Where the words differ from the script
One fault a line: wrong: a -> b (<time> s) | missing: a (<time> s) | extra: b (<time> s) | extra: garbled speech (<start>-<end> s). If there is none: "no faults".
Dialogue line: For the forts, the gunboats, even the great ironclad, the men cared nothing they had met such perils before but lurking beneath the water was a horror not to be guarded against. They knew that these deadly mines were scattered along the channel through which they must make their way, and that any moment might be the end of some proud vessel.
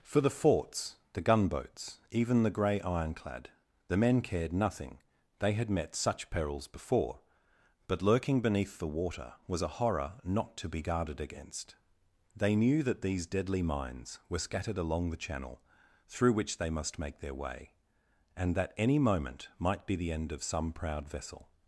wrong: great -> grey (2.5 s)